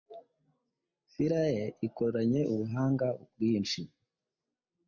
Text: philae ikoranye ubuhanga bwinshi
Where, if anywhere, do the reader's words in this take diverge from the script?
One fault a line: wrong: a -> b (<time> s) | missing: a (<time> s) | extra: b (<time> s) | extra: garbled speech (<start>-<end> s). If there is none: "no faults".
no faults